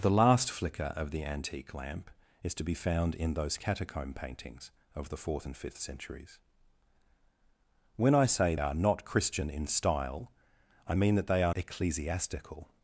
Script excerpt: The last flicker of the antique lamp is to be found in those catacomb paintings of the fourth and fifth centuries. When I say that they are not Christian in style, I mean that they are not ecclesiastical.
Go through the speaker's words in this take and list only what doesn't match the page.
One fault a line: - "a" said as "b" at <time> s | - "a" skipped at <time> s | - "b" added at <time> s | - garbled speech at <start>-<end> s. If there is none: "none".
- "that they" skipped at 8.5 s
- "not" skipped at 11.5 s